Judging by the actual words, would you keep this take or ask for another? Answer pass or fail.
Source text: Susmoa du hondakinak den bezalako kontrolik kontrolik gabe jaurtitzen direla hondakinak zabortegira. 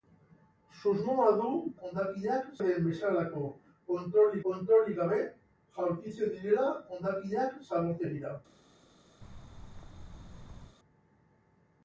pass